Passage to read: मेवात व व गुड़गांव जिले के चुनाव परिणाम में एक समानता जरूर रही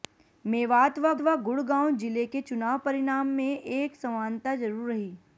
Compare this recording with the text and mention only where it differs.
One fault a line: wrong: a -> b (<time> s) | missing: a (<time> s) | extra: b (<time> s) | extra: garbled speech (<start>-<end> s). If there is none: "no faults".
no faults